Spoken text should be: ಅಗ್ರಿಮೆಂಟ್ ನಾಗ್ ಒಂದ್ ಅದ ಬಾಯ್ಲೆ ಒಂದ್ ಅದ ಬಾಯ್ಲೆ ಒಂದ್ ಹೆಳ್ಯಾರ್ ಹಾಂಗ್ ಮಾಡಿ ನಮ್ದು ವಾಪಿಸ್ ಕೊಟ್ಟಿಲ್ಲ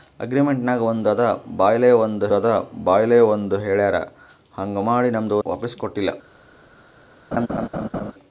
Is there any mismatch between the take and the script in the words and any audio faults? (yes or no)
yes